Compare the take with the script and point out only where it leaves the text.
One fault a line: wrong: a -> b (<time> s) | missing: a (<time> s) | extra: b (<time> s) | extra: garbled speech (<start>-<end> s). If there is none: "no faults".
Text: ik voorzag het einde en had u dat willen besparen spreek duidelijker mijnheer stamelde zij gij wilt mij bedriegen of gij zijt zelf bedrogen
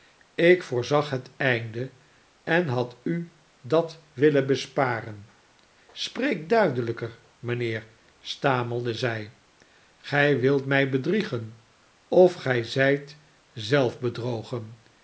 no faults